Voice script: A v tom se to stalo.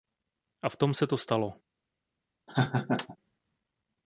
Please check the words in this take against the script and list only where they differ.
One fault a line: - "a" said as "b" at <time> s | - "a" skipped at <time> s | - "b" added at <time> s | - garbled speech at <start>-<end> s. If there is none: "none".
none